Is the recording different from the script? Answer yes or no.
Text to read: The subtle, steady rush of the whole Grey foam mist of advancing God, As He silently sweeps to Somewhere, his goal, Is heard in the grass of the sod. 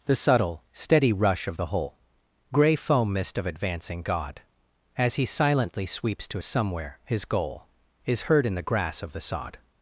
no